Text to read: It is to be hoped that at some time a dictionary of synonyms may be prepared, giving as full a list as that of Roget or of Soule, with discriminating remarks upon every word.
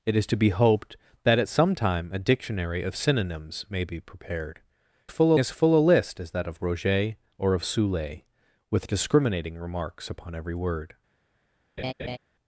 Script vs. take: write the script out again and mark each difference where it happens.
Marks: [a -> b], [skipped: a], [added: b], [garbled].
It is to be hoped that at some time a dictionary of synonyms may be prepared, [giving -> full] as full a list as that of Roget or of Soule, with discriminating remarks upon every word.